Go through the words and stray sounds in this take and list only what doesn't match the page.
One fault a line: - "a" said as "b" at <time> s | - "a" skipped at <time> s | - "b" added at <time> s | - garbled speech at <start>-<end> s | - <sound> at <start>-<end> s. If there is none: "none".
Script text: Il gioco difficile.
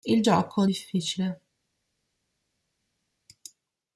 none